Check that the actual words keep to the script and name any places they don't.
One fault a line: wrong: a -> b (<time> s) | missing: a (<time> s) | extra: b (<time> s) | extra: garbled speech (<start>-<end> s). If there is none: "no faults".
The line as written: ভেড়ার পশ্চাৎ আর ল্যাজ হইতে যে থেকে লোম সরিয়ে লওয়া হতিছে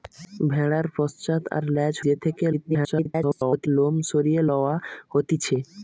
missing: হইতে (1.9 s)
extra: garbled speech (2.5-3.7 s)